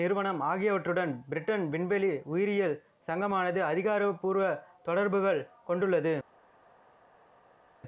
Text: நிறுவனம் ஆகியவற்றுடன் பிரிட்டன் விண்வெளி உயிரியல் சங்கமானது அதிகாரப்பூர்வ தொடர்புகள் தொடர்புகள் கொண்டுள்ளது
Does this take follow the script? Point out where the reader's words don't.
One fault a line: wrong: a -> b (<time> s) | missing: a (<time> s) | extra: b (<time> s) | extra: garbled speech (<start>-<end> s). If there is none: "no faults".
missing: தொடர்புகள் (5.4 s)